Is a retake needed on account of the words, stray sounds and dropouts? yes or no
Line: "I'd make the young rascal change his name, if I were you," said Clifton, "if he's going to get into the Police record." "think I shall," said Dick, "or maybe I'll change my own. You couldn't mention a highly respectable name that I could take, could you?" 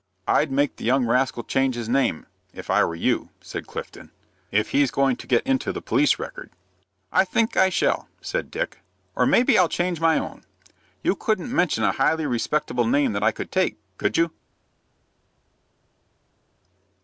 yes